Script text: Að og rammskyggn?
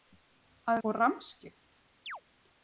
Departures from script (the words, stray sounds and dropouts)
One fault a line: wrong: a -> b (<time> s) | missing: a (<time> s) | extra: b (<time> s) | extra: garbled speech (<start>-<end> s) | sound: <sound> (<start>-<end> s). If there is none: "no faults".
sound: chirp (2.1-2.2 s)